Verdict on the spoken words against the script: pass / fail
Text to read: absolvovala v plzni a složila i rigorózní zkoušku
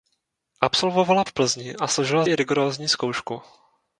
pass